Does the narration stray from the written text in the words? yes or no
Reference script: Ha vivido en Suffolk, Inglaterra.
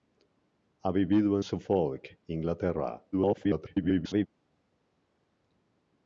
yes